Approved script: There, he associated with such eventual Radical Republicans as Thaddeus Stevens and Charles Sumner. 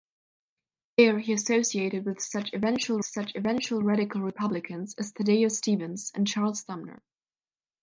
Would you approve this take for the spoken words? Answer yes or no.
no